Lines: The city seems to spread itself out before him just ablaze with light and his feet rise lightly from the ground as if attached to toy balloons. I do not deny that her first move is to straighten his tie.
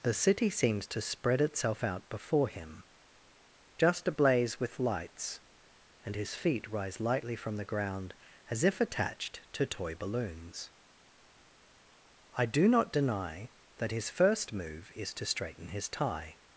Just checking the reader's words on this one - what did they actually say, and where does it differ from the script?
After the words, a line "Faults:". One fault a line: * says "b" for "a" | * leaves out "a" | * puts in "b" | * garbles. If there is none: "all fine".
The city seems to spread itself out before him just ablaze with lights and his feet rise lightly from the ground as if attached to toy balloons. I do not deny that his first move is to straighten his tie.
Faults:
* says "lights" for "light"
* says "his" for "her"